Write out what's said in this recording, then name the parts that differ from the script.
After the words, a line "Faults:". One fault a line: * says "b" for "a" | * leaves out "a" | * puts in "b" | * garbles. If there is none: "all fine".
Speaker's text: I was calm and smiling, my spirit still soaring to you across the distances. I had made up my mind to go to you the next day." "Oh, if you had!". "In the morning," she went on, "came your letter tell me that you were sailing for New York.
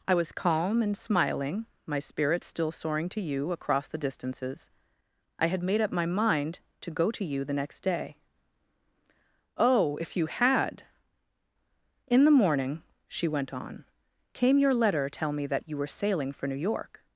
I was calm and smiling, my spirit still soaring to you across the distances. I had made up my mind to go to you the next day." "Oh, if you had!". "In the morning," she went on, "came your letter tell me that you were sailing for New York.
Faults:
all fine